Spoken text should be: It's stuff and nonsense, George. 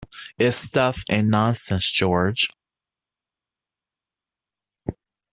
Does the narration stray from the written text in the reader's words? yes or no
no